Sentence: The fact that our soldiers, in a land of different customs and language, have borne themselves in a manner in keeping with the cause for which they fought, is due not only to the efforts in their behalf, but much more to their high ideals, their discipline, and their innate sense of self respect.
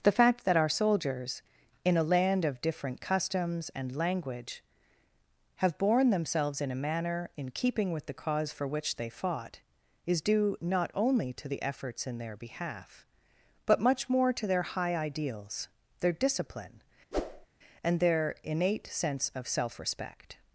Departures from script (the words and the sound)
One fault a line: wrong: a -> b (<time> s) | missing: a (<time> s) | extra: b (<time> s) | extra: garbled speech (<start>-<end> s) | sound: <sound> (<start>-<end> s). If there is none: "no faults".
sound: whoosh (17.1-17.5 s)